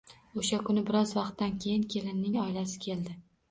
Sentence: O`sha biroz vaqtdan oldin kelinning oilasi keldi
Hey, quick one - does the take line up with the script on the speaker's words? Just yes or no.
no